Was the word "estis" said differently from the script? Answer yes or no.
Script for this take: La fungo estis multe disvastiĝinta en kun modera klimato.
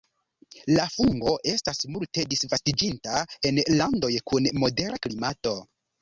yes